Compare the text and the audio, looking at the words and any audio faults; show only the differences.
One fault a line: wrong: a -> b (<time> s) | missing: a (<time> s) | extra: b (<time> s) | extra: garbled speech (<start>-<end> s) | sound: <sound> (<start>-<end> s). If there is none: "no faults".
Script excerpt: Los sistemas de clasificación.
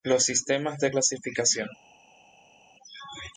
no faults